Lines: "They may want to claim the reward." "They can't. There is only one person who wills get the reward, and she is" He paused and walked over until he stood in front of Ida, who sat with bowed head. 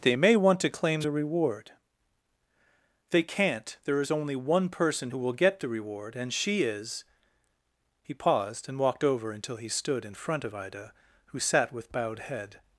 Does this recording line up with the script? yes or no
no